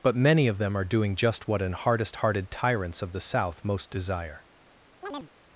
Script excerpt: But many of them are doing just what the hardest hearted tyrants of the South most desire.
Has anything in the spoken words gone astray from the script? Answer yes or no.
yes